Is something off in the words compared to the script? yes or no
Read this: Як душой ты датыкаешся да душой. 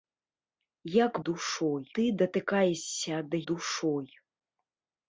no